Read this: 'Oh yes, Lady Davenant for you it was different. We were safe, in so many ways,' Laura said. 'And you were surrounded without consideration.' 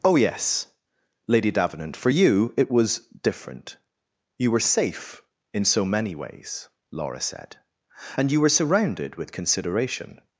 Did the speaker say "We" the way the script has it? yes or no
no